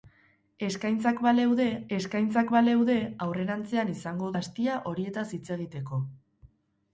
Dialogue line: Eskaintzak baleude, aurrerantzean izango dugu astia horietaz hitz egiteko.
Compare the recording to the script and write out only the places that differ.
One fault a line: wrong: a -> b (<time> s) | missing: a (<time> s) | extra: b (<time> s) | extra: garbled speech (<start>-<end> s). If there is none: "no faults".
extra: eskaintzak baleude (2.0 s)
missing: dugu (4.3 s)